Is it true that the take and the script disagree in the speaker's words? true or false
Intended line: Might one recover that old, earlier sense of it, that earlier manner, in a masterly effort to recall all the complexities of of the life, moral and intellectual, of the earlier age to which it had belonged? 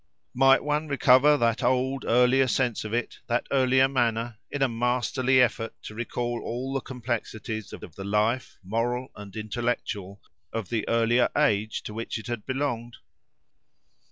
false